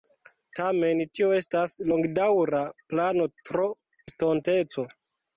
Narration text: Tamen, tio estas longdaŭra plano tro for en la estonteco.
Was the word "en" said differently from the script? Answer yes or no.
yes